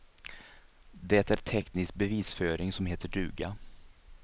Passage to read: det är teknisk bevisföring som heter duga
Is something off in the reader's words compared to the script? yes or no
no